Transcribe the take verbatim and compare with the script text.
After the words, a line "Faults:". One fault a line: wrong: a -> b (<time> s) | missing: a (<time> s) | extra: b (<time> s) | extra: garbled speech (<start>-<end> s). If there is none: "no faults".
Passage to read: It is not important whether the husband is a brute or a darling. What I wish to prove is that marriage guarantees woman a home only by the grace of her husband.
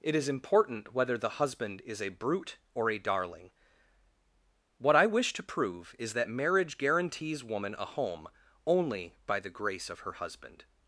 It is important whether the husband is a brute or a darling. What I wish to prove is that marriage guarantees woman a home only by the grace of her husband.
Faults:
missing: not (0.3 s)